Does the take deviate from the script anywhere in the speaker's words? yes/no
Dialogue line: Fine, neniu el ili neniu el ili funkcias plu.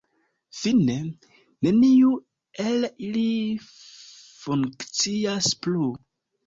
yes